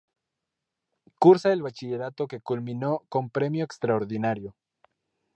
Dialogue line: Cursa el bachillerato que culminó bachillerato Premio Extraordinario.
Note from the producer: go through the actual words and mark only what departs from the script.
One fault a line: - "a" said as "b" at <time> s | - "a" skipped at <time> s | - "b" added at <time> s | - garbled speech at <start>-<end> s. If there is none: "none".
- "bachillerato" said as "con" at 3.1 s